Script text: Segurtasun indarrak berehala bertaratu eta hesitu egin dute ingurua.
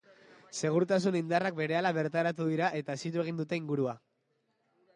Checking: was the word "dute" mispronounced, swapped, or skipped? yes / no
no